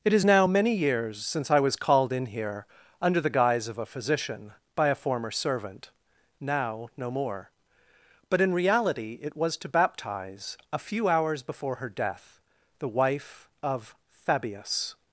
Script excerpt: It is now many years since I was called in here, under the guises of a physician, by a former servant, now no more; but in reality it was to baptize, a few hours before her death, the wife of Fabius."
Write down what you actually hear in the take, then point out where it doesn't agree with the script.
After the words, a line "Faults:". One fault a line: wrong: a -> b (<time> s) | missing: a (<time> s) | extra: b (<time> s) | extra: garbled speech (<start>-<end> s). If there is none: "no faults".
It is now many years since I was called in here, under the guise of a physician, by a former servant, now no more; but in reality it was to baptize, a few hours before her death, the wife of Fabius."
Faults:
wrong: guises -> guise (3.3 s)